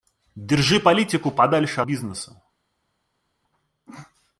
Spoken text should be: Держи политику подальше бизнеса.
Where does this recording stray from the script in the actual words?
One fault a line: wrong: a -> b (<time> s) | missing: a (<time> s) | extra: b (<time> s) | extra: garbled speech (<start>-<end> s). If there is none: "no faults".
no faults